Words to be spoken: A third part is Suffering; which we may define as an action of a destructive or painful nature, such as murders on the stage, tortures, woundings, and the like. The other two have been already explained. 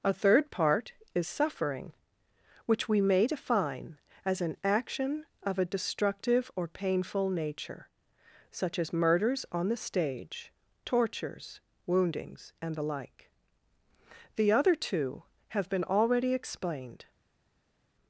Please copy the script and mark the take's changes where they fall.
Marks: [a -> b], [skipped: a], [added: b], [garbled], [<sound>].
A third part is Suffering; which we may define as an action of a destructive or painful nature, such as murders on the stage, tortures, woundings, and the like. The other two have been already explained.